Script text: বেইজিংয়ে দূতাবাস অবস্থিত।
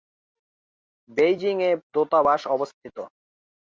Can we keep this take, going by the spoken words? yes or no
yes